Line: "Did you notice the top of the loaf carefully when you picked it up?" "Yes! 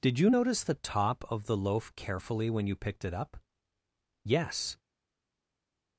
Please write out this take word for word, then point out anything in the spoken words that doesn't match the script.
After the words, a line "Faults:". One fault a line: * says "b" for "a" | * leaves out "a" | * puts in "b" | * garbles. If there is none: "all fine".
"Did you notice the top of the loaf carefully when you picked it up?" "Yes!
Faults:
all fine